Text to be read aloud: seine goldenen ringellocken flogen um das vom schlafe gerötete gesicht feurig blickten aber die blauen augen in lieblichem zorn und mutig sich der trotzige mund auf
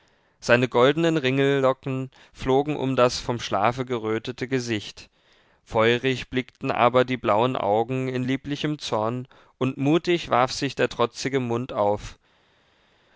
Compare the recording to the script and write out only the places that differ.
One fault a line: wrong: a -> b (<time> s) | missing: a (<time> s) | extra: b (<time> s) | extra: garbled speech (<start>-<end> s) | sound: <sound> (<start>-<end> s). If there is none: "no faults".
extra: warf (10.3 s)